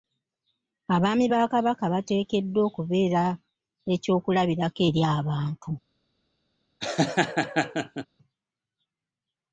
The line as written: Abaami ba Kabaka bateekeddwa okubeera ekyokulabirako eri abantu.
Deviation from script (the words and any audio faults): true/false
true